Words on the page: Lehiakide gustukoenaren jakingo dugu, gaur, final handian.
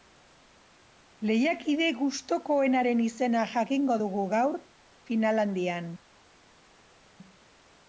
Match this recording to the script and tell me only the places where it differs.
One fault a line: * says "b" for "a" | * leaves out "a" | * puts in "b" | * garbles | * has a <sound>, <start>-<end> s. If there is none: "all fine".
* puts in "izena"